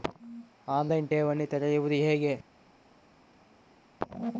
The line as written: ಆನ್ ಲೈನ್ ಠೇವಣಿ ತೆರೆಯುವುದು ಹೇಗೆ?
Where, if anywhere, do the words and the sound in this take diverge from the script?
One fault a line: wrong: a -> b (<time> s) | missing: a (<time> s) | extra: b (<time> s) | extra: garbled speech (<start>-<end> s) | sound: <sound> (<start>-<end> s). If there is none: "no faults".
no faults